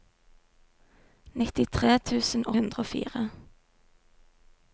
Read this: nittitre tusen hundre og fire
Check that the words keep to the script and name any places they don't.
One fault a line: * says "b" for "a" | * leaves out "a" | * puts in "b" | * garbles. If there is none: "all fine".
all fine